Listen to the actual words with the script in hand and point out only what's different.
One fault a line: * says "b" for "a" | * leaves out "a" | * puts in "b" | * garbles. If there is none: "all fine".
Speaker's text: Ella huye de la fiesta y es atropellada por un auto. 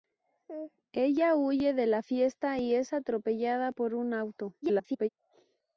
* garbles